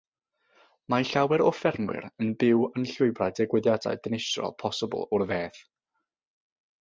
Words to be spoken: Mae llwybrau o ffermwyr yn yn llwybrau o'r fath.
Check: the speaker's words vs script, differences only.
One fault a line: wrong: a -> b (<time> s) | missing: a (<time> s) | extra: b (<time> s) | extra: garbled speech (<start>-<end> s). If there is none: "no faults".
wrong: llwybrau -> llawer (1.0 s)
extra: byw (2.4 s)
extra: digwyddiadau dinistriol posibl (3.4 s)